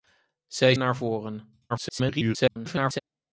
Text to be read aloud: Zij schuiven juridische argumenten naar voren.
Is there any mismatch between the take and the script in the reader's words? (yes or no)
yes